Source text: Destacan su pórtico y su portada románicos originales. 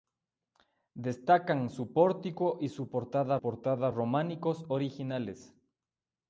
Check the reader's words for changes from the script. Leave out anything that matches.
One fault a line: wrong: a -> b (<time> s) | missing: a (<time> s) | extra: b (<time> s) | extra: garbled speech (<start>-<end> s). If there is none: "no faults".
extra: portada (3.4 s)